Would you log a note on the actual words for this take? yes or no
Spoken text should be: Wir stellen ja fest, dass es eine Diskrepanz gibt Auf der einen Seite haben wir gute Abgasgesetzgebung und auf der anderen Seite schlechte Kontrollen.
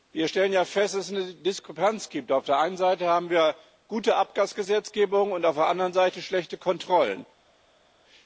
no